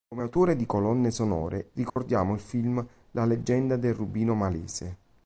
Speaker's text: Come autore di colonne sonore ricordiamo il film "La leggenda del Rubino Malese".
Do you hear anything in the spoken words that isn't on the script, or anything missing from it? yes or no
no